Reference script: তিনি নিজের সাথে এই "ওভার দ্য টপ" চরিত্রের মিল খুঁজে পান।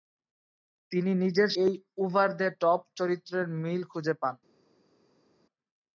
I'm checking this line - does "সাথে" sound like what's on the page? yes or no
no